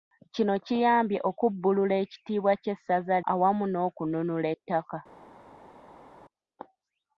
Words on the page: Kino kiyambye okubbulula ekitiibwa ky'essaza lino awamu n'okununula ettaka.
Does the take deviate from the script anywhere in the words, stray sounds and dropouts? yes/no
yes